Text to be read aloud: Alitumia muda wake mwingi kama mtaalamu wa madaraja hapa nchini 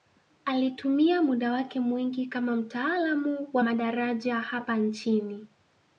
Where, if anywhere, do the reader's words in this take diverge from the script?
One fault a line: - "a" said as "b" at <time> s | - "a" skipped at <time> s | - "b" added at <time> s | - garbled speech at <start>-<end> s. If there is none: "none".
none